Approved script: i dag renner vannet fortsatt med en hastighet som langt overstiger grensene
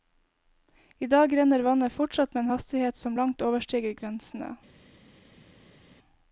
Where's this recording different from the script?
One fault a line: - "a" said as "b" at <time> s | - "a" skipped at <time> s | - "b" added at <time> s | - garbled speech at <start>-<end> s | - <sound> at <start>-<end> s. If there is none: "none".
none